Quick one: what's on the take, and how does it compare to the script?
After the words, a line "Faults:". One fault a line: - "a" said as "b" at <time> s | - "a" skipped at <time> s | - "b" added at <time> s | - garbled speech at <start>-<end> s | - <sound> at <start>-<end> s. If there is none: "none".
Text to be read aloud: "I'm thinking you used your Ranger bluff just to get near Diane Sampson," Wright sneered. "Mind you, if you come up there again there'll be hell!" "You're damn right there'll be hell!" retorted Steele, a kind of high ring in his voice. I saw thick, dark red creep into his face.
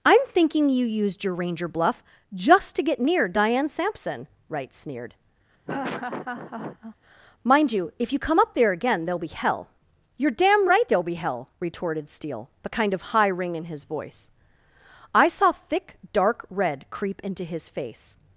"I'm thinking you used your Ranger bluff just to get near Diane Sampson," Wright sneered. "Mind you, if you come up there again there'll be hell!" "You're damn right there'll be hell!" retorted Steele, the kind of high ring in his voice. I saw thick, dark red creep into his face.
Faults:
- laugh at 5.7-7.0 s
- "a" said as "the" at 12.6 s